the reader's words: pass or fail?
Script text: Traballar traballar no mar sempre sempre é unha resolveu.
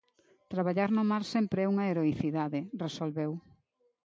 fail